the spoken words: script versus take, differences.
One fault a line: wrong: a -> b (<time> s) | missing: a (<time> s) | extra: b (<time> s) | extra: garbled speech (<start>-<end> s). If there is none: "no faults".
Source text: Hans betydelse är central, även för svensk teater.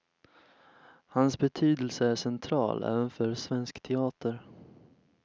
no faults